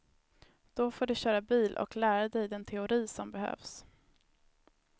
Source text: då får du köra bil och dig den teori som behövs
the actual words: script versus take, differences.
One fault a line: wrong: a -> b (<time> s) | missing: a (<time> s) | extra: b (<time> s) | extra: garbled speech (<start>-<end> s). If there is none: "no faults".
extra: lära (1.9 s)